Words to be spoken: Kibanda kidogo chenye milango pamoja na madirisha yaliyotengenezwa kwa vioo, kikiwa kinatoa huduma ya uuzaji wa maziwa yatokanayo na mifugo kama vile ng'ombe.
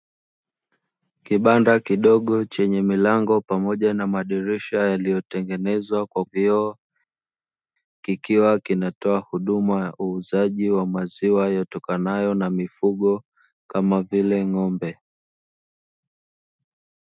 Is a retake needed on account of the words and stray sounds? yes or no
no